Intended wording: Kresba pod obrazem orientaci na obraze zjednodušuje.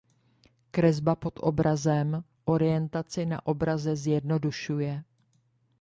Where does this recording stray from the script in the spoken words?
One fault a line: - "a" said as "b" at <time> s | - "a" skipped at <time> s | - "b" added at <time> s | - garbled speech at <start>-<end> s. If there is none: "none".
none